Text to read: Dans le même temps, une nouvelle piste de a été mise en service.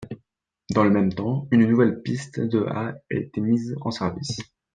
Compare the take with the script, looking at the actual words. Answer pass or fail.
pass